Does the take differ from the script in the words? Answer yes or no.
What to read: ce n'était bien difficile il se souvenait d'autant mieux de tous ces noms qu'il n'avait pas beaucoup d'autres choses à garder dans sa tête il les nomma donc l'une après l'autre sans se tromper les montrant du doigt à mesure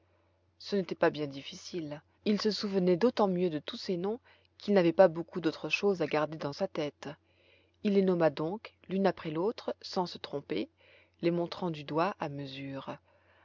yes